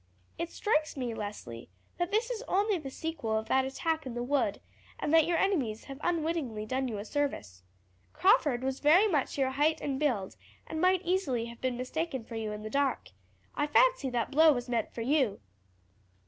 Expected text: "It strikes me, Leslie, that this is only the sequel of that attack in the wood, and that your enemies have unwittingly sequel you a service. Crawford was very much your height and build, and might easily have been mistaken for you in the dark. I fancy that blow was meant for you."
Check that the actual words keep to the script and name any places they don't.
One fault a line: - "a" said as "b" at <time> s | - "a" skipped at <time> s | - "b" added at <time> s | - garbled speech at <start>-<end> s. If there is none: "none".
- "sequel" said as "done" at 6.6 s